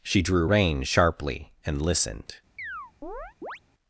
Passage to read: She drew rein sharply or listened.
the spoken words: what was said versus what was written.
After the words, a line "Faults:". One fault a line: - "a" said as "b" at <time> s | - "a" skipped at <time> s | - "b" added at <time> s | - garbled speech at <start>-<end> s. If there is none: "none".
She drew rein sharply and listened.
Faults:
- "or" said as "and" at 1.6 s